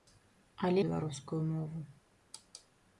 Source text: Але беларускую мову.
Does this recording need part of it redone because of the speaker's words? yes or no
no